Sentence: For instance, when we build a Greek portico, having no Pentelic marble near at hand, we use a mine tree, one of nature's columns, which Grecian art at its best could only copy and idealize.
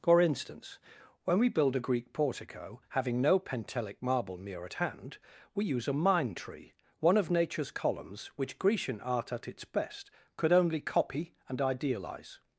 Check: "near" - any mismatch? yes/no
no